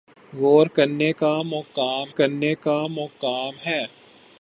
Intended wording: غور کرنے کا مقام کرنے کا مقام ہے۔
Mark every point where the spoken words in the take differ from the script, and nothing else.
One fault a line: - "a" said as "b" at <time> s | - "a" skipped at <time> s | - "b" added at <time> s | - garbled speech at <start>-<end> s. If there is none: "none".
none